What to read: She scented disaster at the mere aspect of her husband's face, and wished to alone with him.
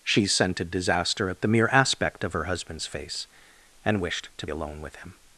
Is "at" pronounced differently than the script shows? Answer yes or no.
no